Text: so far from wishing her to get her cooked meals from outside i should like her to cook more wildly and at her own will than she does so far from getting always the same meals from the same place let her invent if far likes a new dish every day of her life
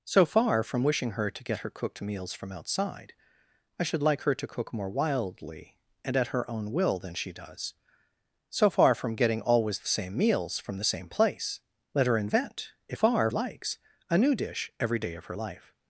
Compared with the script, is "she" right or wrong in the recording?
right